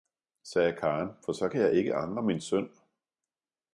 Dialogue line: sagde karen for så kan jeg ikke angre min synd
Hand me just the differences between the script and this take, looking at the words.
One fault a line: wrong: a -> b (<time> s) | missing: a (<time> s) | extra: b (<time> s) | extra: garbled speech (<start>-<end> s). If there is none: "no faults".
no faults